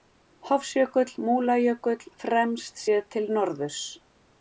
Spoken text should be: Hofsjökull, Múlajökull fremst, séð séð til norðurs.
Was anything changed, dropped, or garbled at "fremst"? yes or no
no